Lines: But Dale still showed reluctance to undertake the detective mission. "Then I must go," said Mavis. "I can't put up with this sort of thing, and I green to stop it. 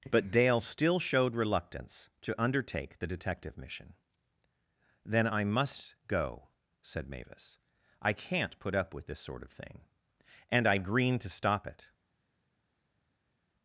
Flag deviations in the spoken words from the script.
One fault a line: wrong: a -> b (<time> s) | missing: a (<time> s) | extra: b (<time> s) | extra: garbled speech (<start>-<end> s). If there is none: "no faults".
no faults